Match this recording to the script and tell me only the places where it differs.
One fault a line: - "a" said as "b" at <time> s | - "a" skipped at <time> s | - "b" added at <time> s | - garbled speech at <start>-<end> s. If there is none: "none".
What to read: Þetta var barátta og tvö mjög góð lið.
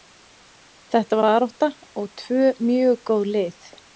- "var" skipped at 1.2 s